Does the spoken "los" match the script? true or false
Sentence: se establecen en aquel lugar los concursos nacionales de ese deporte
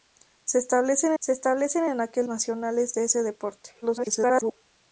false